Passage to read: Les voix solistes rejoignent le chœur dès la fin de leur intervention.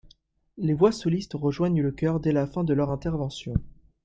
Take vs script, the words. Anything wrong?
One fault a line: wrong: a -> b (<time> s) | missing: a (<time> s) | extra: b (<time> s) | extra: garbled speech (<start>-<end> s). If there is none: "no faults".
no faults